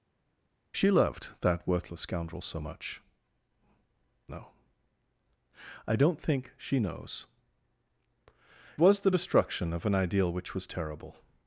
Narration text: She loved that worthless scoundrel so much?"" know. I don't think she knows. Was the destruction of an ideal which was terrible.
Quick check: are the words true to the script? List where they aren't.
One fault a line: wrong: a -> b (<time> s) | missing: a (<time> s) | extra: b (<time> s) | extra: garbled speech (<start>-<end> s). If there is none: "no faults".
no faults